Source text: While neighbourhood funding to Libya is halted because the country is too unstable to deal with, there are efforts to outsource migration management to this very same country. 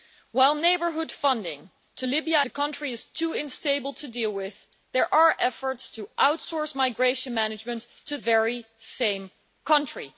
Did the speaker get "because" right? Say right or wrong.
wrong